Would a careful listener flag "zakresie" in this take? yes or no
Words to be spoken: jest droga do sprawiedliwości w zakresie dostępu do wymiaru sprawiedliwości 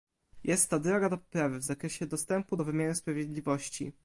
no